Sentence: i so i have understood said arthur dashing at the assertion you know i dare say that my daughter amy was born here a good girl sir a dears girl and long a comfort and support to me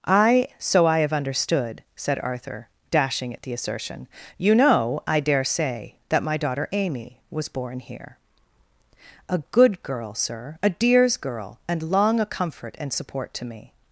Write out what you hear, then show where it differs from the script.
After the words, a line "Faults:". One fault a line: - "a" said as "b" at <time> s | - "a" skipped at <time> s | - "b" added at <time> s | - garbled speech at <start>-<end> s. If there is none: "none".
i so i have understood said arthur dashing at the assertion you know i dare say that my daughter amy was born here a good girl sir a dears girl and long a comfort and support to me
Faults:
none